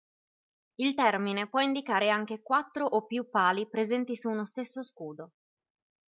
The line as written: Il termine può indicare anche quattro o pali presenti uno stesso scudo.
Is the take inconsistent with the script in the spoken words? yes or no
yes